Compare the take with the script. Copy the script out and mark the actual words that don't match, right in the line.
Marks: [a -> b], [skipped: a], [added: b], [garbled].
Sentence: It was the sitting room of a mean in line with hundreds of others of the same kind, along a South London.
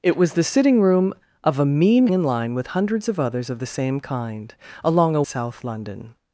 It was the sitting room of a mean in line with hundreds of others of the same kind, along a South London.